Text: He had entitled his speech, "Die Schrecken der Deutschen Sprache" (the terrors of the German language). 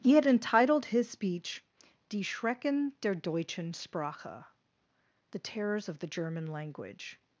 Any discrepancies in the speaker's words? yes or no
no